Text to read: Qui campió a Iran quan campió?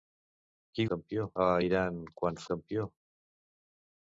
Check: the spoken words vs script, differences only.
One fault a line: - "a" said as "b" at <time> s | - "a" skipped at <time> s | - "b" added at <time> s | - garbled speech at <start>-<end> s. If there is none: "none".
none